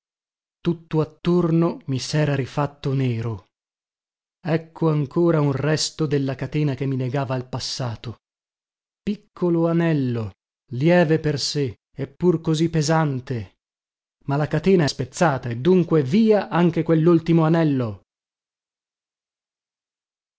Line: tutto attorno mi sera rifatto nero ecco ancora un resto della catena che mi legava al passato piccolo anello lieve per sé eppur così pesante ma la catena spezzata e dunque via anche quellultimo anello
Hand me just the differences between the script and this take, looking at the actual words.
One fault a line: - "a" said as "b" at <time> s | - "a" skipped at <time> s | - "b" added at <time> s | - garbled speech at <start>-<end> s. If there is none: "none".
none